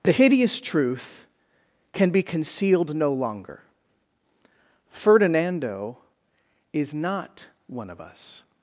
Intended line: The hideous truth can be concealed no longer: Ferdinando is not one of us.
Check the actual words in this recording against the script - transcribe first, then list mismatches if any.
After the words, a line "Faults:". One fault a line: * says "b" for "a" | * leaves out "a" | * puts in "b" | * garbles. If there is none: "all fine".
The hideous truth can be concealed no longer: Ferdinando is not one of us.
Faults:
all fine